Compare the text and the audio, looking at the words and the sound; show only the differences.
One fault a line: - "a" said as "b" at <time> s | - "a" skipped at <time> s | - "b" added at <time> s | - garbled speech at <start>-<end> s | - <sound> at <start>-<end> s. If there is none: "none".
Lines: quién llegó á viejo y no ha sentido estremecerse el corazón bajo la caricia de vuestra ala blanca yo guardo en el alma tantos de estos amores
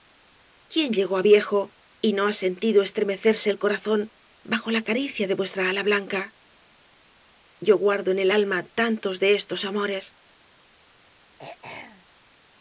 - throat clearing at 11.4-12.1 s